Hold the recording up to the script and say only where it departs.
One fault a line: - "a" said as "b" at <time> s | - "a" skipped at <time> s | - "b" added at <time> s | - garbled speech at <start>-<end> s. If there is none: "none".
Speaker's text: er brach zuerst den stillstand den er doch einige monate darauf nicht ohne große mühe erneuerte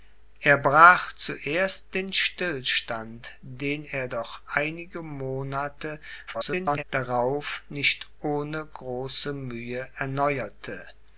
- garbled speech at 6.3-6.8 s